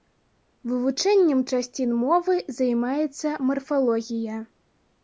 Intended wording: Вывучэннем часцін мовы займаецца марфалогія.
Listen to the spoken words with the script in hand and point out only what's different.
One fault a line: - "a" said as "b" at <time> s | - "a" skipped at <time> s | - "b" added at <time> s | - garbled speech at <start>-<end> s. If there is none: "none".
none